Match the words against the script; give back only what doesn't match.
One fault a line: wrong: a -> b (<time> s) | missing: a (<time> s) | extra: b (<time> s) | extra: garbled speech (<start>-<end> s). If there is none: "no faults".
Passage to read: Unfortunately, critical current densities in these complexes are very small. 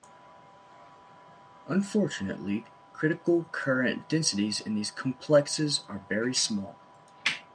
no faults